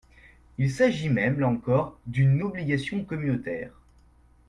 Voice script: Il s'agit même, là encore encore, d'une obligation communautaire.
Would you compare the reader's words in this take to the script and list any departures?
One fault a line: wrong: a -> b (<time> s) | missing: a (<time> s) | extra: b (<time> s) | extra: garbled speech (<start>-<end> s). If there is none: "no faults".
missing: encore (2.0 s)